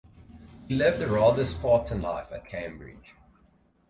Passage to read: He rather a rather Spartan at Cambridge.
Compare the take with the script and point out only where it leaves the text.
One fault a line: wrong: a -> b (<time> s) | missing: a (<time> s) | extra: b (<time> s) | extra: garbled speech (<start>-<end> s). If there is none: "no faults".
wrong: rather -> lived (0.7 s)
extra: life (2.0 s)